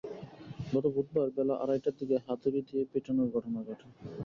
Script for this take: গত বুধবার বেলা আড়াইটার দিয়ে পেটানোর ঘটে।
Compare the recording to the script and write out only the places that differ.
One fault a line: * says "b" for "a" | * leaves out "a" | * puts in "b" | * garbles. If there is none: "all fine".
* puts in "দিকে হাতুড়ি"
* puts in "ঘটনা"